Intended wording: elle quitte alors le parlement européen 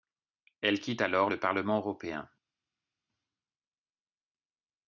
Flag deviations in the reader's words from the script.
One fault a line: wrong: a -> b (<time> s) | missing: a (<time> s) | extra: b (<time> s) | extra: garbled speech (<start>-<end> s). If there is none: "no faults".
no faults